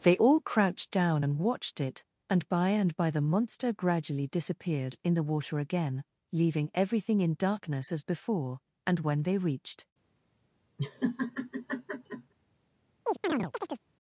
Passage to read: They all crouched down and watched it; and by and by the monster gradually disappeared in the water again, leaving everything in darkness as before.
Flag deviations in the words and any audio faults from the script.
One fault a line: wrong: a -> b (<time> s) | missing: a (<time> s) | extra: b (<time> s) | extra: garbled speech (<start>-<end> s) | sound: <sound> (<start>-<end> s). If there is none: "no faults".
extra: And when they reached (8.9 s)
sound: laugh (10.8-12.3 s)
sound: chirp (13.0-13.8 s)